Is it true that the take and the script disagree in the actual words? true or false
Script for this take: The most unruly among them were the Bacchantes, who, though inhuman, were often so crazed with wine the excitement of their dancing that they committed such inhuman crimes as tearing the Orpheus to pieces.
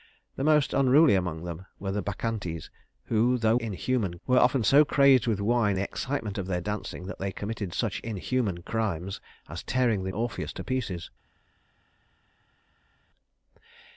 false